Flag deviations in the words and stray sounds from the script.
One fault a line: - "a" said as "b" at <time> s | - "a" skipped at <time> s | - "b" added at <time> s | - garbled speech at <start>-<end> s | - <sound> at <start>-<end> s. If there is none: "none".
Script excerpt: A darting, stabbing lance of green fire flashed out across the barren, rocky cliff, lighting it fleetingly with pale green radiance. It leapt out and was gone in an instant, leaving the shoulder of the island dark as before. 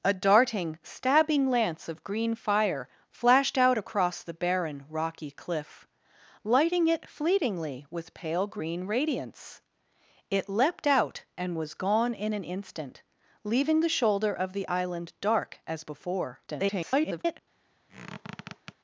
- garbled speech at 16.5-17.4 s
- squeak at 17.9-18.7 s